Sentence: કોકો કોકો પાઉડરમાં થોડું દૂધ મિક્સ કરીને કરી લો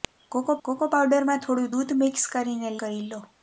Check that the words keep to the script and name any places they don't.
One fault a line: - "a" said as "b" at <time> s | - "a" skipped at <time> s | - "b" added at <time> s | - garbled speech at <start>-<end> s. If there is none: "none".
none